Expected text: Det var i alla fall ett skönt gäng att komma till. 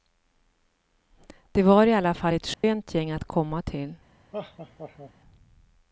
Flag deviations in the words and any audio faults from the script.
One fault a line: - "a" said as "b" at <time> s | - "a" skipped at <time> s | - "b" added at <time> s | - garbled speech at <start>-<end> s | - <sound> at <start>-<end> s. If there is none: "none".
- dropout at 2.5-2.6 s
- laugh at 4.3-5.1 s